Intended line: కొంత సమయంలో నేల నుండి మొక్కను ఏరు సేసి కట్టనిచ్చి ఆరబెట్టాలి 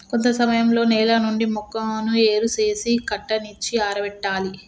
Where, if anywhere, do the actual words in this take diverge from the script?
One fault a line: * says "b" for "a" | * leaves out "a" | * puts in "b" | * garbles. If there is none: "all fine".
all fine